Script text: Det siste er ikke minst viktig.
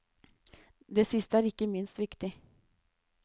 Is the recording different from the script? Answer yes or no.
no